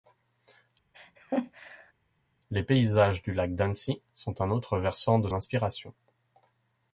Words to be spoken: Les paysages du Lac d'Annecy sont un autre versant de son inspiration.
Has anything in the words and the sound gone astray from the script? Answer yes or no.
yes